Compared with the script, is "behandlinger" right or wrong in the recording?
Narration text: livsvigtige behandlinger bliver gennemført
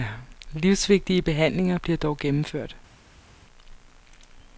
right